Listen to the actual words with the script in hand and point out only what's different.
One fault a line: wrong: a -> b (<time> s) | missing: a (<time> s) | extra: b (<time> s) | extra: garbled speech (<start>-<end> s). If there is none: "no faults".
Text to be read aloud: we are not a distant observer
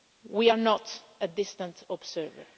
no faults